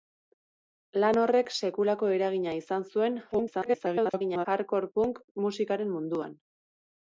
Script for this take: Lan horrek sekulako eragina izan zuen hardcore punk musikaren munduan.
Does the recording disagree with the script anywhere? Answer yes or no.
yes